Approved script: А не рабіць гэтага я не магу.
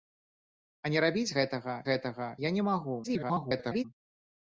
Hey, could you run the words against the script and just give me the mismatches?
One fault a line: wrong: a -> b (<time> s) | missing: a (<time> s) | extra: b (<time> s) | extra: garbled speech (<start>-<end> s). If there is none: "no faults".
extra: гэтага (1.9 s)
extra: garbled speech (3.0-3.8 s)